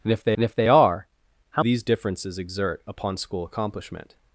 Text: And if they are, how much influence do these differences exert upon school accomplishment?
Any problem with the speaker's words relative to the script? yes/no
yes